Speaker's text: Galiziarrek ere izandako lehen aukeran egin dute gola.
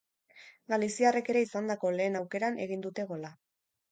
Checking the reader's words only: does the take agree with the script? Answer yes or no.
yes